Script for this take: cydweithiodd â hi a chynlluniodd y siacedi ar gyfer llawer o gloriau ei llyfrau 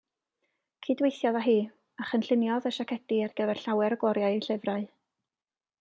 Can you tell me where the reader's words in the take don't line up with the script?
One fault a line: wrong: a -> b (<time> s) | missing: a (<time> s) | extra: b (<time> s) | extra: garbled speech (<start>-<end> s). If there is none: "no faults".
no faults